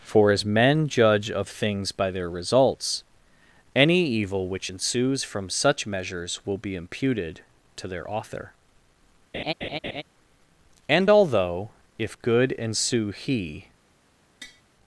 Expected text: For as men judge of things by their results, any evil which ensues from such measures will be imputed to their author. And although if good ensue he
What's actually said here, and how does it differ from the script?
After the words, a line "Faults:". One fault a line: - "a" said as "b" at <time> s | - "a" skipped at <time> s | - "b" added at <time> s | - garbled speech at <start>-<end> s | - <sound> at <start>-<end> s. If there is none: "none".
For as men judge of things by their results, any evil which ensues from such measures will be imputed to their author. And although if good ensue he
Faults:
- laugh at 9.3-10.0 s
- tap at 14.4-14.6 s